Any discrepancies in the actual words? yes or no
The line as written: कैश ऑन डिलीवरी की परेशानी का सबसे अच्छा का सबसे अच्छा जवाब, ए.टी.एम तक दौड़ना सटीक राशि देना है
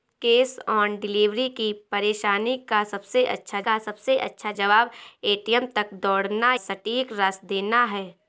no